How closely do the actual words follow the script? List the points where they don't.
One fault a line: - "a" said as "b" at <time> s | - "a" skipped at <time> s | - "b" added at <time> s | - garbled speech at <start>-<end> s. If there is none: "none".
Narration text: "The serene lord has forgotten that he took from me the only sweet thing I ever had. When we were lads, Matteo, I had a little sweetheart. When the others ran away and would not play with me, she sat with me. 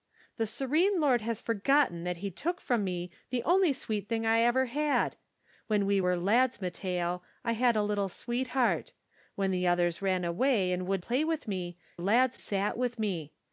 - "not" skipped at 11.0 s
- "she" said as "lads" at 12.0 s